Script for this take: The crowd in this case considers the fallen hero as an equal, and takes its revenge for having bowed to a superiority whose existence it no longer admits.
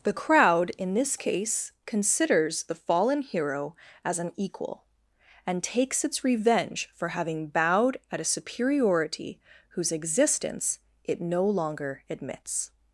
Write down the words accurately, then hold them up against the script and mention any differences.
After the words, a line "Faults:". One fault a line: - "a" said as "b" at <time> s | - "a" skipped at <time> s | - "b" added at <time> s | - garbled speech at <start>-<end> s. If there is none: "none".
The crowd in this case considers the fallen hero as an equal, and takes its revenge for having bowed at a superiority whose existence it no longer admits.
Faults:
- "to" said as "at" at 8.1 s